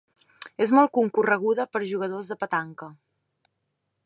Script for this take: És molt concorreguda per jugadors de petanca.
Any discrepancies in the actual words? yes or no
no